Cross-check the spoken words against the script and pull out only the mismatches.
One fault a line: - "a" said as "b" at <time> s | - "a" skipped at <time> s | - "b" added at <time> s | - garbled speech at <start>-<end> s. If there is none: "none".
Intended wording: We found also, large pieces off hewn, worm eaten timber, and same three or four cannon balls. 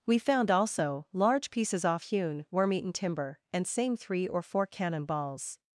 none